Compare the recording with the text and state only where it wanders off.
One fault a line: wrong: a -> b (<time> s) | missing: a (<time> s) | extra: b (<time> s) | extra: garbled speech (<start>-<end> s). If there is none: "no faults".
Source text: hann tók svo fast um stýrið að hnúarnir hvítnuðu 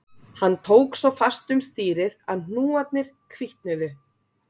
no faults